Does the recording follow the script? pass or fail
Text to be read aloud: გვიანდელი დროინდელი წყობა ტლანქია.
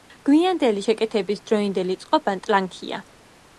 fail